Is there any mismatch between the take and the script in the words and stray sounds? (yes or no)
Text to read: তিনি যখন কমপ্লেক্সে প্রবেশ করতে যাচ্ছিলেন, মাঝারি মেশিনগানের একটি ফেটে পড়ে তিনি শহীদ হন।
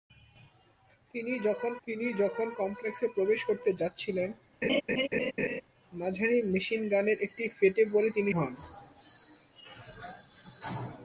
yes